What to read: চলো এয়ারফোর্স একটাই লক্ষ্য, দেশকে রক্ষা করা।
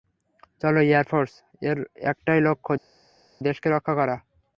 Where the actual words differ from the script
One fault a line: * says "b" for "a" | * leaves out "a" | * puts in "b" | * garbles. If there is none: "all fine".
* puts in "এর"